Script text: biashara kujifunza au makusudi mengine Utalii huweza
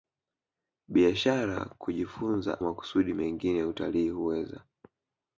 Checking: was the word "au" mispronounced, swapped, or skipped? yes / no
yes